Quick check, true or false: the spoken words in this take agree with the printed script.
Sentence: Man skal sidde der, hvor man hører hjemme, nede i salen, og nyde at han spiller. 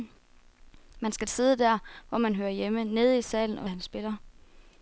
false